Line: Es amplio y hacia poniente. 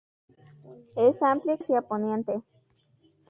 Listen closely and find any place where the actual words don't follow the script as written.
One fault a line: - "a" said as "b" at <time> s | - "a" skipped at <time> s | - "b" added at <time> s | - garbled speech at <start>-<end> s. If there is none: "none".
none